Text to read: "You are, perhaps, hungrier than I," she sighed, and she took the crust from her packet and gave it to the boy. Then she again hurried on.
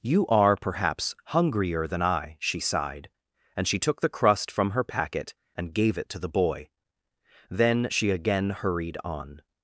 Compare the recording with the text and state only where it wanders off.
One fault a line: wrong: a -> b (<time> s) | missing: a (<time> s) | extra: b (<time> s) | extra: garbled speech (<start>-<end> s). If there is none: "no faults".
no faults